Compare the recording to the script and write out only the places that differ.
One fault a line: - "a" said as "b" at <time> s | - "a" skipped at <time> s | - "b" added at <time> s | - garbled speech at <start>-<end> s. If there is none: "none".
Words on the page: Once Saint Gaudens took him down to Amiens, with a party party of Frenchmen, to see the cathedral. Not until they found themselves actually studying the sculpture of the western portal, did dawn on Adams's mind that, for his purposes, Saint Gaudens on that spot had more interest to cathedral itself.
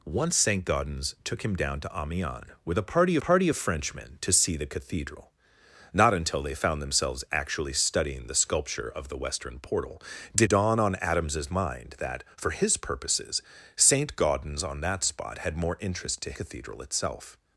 none